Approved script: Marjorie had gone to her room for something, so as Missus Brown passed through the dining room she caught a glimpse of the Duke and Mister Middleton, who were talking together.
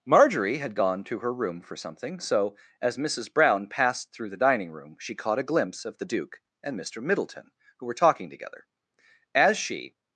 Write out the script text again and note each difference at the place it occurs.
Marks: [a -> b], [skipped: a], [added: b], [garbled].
Marjorie had gone to her room for something, so as Missus Brown passed through the dining room she caught a glimpse of the Duke and Mister Middleton, who were talking together. [added: As she]